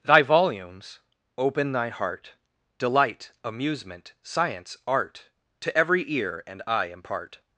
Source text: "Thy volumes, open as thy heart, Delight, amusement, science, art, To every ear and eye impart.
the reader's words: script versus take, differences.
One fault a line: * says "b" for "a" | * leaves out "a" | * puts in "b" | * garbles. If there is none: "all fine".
* leaves out "as"